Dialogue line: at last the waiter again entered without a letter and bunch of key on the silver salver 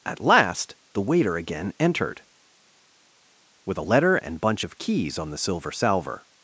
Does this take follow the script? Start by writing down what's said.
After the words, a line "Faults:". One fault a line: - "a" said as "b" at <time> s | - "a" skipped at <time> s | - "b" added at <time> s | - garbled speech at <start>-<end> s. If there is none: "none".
at last the waiter again entered with a letter and bunch of keys on the silver salver
Faults:
- "without" said as "with" at 3.7 s
- "key" said as "keys" at 4.8 s